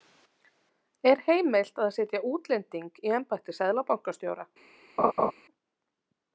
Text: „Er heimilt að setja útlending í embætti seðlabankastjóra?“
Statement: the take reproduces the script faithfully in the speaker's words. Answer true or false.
true